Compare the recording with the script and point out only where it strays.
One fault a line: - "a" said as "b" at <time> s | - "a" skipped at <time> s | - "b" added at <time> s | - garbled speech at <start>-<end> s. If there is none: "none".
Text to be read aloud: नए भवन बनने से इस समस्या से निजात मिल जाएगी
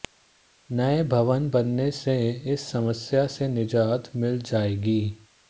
none